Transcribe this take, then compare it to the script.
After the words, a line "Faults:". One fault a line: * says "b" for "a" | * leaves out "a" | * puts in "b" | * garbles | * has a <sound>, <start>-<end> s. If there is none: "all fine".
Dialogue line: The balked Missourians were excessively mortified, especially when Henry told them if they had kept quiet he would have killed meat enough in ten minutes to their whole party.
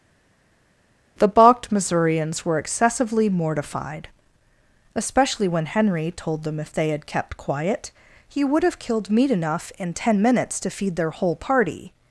The balked Missourians were excessively mortified, especially when Henry told them if they had kept quiet he would have killed meat enough in ten minutes to feed their whole party.
Faults:
* puts in "feed"